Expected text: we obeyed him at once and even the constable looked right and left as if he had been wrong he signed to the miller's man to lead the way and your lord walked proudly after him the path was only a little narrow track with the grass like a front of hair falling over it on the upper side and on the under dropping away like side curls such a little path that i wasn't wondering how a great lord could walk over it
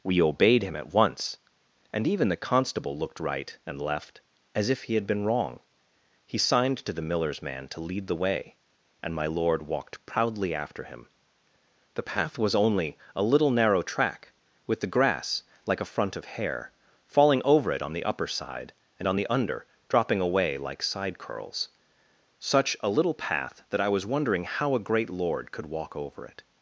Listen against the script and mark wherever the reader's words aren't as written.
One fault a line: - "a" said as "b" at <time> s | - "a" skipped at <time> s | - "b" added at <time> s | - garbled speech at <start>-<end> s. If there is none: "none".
- "your" said as "my" at 9.1 s
- "wasn't" said as "was" at 23.9 s